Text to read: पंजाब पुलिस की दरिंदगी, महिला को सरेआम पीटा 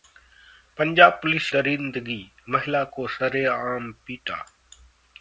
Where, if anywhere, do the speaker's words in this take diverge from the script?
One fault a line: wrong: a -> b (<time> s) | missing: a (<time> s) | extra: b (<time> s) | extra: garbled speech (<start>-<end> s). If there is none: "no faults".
missing: की (1.5 s)